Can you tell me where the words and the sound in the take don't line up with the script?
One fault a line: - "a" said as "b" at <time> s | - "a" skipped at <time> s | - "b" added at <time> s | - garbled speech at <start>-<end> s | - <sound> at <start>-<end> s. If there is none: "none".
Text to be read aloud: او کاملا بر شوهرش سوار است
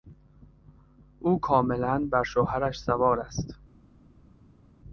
none